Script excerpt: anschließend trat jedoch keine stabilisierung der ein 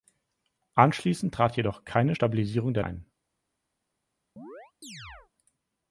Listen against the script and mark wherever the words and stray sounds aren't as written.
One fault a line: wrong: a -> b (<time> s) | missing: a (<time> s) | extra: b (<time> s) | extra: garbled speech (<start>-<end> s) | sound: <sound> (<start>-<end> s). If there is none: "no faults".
sound: chirp (4.4-5.3 s)